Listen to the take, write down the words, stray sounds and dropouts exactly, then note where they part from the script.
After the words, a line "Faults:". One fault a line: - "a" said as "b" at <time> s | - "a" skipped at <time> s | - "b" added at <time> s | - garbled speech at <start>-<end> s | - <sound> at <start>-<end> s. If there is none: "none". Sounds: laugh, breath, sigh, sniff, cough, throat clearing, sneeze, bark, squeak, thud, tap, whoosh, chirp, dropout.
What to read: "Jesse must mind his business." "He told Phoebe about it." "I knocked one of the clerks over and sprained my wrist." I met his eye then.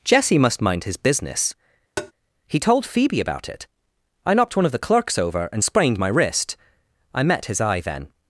"Jesse must mind his business." "He told Phoebe about it." "I knocked one of the clerks over and sprained my wrist." I met his eye then.
Faults:
- tap at 2.0-2.1 s